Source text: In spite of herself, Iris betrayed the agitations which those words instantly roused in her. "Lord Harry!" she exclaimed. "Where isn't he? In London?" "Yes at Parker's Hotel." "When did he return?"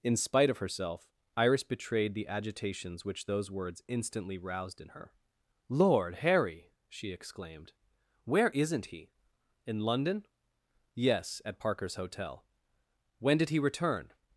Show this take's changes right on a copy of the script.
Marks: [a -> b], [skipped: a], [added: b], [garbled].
In spite of herself, Iris betrayed the agitations which those words instantly roused in her. "Lord Harry!" she exclaimed. "Where isn't he? In London?" "Yes at Parker's Hotel." "When did he return?"